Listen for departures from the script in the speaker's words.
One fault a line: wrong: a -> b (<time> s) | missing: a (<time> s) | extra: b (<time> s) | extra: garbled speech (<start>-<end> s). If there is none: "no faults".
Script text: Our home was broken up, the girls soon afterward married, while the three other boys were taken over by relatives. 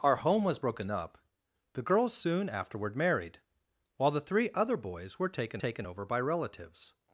extra: taken (5.5 s)